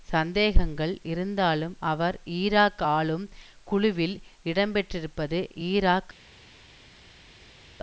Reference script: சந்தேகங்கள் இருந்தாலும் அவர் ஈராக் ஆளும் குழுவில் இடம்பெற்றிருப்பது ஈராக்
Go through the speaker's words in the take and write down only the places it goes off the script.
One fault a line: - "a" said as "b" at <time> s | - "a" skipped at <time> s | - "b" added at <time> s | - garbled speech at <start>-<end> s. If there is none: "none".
none